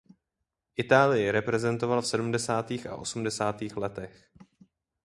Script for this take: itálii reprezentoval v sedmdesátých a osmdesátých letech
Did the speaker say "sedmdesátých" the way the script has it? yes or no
yes